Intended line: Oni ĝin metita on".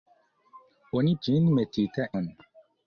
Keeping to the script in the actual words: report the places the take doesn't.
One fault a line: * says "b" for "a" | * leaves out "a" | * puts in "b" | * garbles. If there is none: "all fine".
all fine